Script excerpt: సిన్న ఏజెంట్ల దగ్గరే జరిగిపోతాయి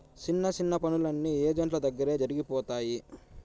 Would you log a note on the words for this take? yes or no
yes